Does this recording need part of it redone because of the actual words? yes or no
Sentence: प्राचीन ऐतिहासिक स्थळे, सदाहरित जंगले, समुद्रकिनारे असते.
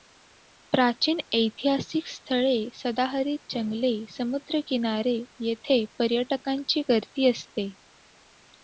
yes